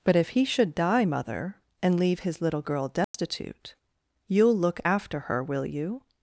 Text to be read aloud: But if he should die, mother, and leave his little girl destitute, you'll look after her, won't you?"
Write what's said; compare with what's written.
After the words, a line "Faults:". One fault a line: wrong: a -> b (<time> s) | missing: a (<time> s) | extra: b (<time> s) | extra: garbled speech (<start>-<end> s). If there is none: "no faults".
But if he should die, mother, and leave his little girl destitute, you'll look after her, will you?"
Faults:
wrong: won't -> will (5.4 s)